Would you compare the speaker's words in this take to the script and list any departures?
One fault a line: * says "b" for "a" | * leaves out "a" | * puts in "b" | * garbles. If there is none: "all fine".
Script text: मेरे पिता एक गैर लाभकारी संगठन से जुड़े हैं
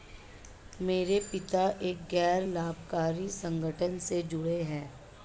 all fine